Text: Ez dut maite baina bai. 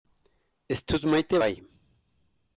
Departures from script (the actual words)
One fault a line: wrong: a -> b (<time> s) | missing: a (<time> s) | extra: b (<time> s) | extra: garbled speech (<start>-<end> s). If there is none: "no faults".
missing: baina (1.4 s)